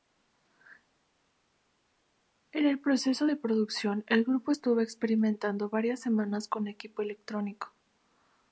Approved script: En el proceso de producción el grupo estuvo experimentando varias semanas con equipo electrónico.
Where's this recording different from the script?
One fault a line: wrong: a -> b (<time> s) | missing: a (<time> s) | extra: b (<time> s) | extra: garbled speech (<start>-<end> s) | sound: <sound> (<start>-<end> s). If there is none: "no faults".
no faults